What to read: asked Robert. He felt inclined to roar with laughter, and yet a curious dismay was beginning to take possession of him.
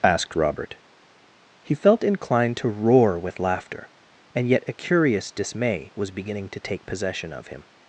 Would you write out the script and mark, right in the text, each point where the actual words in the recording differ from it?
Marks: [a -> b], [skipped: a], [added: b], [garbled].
asked Robert. He felt inclined to roar with laughter, and yet a curious dismay was beginning to take possession of him.